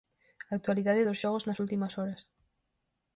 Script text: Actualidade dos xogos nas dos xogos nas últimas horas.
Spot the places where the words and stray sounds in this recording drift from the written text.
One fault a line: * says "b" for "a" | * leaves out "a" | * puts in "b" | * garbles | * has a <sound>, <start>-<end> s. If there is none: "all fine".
* leaves out "dos xogos nas"